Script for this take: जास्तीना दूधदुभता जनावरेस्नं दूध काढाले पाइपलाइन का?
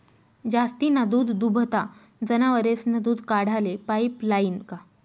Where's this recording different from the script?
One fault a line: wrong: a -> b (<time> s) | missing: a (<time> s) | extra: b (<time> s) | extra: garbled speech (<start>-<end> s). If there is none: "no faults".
no faults